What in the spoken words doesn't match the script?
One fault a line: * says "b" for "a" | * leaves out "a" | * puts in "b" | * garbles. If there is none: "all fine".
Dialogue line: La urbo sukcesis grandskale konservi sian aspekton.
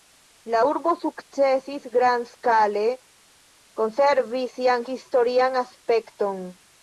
* puts in "historian"